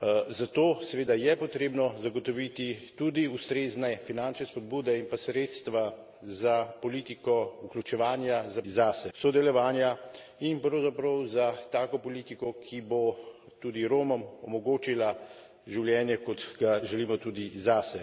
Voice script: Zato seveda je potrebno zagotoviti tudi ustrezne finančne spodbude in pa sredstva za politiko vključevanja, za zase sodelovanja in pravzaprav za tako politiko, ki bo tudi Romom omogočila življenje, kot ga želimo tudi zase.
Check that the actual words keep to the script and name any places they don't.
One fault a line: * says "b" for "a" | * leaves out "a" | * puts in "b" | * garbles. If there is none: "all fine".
all fine